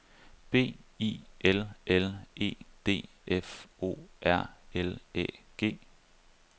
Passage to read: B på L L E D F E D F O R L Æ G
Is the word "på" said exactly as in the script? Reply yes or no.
no